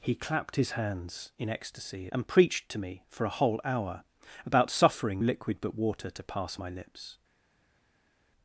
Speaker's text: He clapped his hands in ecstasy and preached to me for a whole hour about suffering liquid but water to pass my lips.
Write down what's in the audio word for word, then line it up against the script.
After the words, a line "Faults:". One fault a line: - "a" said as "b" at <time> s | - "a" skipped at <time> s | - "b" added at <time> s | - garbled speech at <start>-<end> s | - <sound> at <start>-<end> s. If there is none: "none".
He clapped his hands in ecstasy and preached to me for a whole hour about suffering liquid but water to pass my lips.
Faults:
none